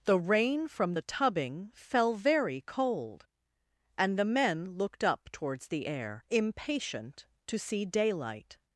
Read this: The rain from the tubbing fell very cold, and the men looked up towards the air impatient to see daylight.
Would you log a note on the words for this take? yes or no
no